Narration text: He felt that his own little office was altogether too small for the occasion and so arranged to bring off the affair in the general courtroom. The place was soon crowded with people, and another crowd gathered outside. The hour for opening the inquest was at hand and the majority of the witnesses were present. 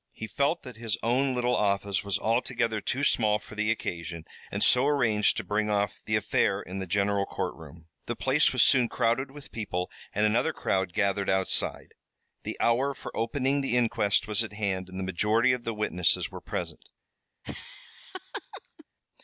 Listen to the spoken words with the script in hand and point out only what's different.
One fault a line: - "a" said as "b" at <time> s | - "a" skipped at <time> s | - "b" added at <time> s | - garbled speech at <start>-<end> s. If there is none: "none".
none